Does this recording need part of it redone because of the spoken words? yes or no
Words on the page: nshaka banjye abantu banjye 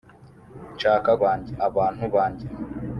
no